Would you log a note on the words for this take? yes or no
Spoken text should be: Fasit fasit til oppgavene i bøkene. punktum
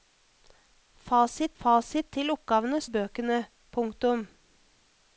no